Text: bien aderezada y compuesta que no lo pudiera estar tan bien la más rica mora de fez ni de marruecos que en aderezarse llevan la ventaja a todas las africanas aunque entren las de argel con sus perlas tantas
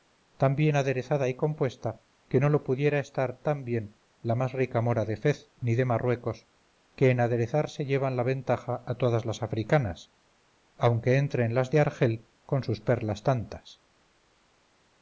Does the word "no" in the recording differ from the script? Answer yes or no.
no